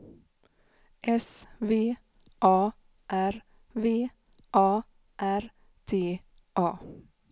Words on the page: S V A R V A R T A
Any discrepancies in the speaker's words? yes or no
no